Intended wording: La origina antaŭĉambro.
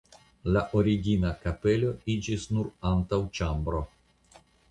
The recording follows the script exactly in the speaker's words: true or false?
false